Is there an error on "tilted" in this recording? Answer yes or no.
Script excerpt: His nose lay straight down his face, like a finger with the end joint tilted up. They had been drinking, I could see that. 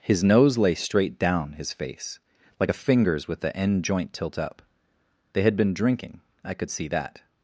yes